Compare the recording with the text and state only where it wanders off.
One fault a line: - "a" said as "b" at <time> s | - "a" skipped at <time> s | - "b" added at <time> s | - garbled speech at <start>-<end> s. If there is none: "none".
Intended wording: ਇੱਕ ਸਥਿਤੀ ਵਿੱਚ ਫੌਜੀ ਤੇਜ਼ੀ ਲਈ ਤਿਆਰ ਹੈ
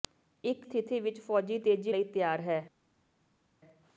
none